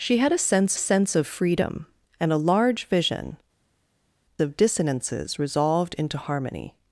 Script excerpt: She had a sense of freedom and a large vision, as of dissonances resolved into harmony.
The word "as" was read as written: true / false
false